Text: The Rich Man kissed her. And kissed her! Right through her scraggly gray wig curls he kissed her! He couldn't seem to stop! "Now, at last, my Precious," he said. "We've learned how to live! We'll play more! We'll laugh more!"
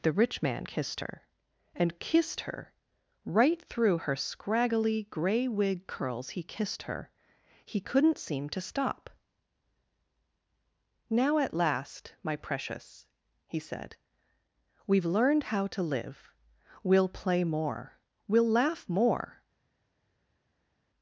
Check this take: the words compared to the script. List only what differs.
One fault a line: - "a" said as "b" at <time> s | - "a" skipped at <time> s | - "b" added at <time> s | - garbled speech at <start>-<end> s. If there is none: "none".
none